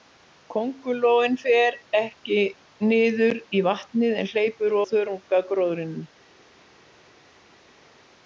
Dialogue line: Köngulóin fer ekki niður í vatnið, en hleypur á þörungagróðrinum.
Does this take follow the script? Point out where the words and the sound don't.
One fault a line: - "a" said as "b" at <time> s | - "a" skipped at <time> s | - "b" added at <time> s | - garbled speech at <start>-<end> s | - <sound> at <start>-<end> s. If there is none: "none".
none